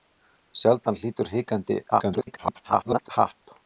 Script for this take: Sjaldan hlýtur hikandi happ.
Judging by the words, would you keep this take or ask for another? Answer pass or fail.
fail